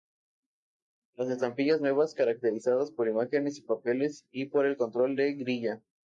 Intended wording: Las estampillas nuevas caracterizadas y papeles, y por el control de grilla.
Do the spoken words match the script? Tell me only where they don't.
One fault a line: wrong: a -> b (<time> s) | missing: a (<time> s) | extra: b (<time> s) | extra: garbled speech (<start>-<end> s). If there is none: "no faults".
extra: por imágenes (2.9 s)